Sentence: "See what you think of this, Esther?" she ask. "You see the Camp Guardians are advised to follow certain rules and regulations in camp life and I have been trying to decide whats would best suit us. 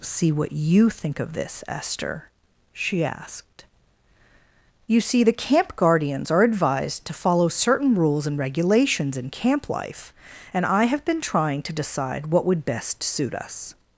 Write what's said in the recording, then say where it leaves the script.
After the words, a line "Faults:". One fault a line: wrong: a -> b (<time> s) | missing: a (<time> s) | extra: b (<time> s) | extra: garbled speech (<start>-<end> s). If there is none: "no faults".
"See what you think of this, Esther?" she asked. "You see the Camp Guardians are advised to follow certain rules and regulations in camp life and I have been trying to decide what would best suit us.
Faults:
wrong: ask -> asked (3.0 s)
wrong: whats -> what (12.3 s)